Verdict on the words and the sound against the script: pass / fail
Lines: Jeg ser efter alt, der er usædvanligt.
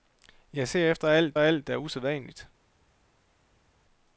fail